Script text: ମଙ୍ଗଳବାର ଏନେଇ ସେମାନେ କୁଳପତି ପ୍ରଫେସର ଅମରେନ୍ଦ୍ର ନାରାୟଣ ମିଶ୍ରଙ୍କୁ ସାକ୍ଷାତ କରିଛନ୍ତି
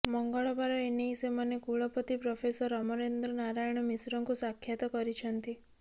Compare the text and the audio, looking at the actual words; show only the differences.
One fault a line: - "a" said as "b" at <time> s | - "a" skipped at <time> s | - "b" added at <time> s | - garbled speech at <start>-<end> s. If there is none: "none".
none